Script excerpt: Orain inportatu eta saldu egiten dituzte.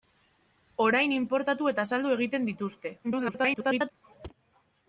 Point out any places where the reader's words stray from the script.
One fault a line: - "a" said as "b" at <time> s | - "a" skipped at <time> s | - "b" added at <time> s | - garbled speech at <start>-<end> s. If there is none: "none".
- garbled speech at 3.0-3.9 s